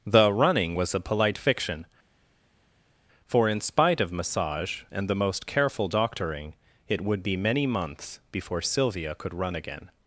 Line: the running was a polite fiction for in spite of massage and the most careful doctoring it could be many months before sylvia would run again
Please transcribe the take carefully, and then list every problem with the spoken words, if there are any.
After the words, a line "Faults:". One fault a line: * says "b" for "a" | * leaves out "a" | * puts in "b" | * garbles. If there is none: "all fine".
the running was a polite fiction for in spite of massage and the most careful doctoring it would be many months before sylvia could run again
Faults:
* says "would" for "could"
* says "could" for "would"